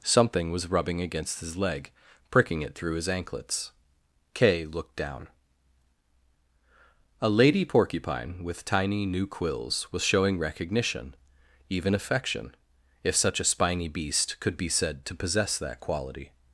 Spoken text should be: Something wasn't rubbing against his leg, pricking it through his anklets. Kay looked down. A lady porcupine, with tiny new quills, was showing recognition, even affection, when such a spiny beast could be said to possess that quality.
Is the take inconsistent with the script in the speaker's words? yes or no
yes